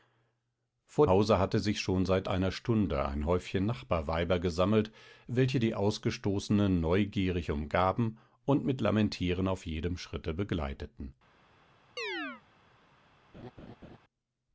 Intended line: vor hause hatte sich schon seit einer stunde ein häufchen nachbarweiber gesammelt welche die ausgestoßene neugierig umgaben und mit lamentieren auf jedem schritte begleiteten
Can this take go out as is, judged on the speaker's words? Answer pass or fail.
pass